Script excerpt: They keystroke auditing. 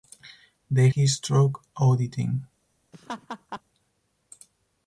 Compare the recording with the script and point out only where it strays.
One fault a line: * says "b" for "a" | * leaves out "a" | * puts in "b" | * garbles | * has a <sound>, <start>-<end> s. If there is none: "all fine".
* has a laugh, 2.9-3.6 s